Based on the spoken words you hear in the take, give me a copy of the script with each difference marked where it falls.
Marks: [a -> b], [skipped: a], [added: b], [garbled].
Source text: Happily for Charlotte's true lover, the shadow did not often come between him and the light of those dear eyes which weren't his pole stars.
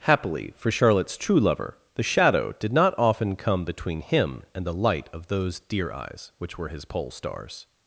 Happily for Charlotte's true lover, the shadow did not often come between him and the light of those dear eyes which [weren't -> were] his pole stars.